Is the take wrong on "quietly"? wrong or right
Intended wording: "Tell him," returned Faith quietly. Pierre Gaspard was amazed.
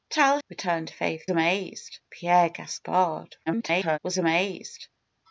wrong